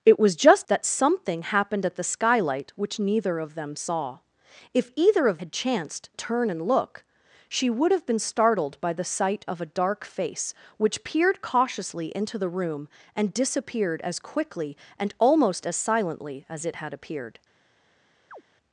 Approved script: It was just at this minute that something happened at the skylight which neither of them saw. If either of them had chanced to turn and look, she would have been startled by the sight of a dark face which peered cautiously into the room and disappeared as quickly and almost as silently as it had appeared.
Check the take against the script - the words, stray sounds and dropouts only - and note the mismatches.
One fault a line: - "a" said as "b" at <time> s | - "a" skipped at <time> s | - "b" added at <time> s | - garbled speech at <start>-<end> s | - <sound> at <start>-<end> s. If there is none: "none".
- "at this minute" skipped at 0.7 s
- "them" skipped at 5.4 s
- "to" skipped at 6.1 s
- chirp at 18.3-18.4 s